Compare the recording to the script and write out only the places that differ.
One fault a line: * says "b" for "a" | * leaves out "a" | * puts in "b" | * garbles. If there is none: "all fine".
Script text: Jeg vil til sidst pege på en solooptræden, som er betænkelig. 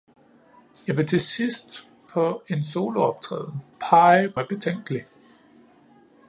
* leaves out "pege"
* says "pege" for "som"